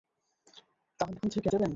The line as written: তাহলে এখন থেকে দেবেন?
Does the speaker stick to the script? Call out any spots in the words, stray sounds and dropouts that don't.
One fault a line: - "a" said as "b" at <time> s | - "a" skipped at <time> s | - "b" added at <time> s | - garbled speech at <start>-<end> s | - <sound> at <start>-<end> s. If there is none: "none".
none